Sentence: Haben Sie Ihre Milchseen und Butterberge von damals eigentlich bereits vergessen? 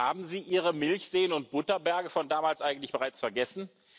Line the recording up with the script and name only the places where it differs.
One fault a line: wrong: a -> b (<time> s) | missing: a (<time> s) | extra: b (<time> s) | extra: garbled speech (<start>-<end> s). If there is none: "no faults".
no faults